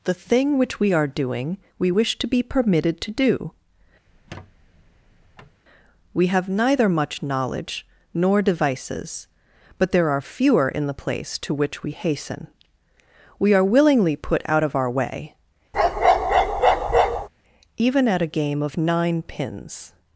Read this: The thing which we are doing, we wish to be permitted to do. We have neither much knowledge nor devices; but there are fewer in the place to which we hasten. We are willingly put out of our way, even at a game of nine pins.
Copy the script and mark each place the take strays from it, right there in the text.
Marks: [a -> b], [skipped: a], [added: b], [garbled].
The thing which we are doing, we wish to be permitted to do. We have neither much knowledge nor devices; but there are fewer in the place to which we hasten. We are willingly put out of our way, even at a game of nine pins.